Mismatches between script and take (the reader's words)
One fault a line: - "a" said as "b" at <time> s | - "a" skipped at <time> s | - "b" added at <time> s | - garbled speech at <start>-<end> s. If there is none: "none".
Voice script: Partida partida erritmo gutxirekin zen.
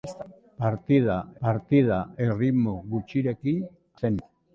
none